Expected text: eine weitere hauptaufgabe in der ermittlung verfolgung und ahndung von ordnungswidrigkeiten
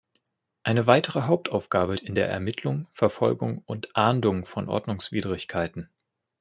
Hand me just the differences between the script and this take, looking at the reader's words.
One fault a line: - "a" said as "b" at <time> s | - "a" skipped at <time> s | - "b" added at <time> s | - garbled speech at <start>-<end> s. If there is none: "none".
none